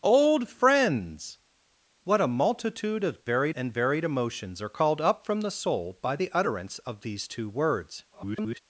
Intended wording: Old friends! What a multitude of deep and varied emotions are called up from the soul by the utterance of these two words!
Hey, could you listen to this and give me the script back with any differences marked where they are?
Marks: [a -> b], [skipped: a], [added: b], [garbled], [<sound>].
Old friends! What a multitude of [deep -> varied] and varied emotions are called up from the soul by the utterance of these two words! [garbled]